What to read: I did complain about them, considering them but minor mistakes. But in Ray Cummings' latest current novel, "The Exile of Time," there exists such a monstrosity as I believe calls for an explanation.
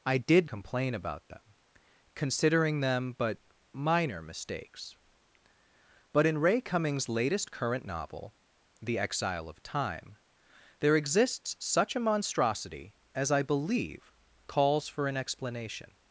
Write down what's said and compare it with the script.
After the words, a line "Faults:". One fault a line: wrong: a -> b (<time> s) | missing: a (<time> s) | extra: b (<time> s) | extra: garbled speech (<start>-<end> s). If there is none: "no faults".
I did complain about them, considering them but minor mistakes. But in Ray Cummings' latest current novel, "The Exile of Time," there exists such a monstrosity as I believe calls for an explanation.
Faults:
no faults